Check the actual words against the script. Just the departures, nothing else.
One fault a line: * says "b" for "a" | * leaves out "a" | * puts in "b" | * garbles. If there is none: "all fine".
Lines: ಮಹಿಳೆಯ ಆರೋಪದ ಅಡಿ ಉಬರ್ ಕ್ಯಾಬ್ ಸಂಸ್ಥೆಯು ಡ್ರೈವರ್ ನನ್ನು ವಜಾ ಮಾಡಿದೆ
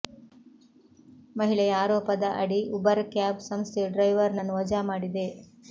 all fine